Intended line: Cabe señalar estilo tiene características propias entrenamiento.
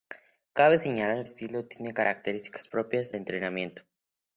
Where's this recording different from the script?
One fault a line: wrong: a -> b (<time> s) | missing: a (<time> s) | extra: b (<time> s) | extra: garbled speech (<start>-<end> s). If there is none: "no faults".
no faults